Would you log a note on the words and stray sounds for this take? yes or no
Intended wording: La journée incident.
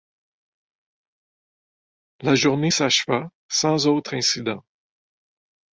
yes